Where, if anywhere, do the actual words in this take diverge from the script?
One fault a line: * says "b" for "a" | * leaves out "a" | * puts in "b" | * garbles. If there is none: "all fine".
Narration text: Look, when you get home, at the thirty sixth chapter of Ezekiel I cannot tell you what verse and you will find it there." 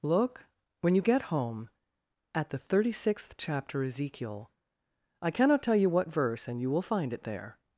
* leaves out "of"